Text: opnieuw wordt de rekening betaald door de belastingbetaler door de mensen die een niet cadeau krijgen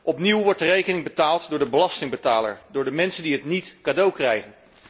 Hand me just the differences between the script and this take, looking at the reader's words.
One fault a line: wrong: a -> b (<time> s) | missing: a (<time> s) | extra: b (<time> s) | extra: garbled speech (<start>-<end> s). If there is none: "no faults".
wrong: een -> het (3.3 s)